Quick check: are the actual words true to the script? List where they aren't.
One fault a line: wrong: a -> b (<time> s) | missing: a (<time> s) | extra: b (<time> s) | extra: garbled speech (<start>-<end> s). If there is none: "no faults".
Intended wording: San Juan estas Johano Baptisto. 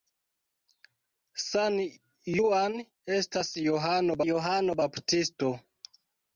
extra: Johano (4.3 s)